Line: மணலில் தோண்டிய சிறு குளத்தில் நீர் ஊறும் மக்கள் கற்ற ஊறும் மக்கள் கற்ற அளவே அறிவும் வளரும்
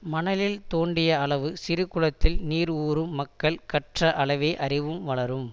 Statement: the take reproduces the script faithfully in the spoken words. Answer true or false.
false